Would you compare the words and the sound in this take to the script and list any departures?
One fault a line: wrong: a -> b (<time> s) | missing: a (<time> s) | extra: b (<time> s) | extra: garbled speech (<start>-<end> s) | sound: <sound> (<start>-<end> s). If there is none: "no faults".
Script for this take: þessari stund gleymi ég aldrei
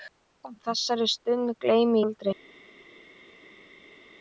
missing: ég (2.0 s)